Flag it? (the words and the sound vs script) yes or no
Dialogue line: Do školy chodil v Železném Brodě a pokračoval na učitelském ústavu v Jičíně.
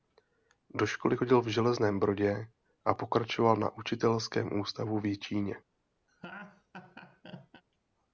yes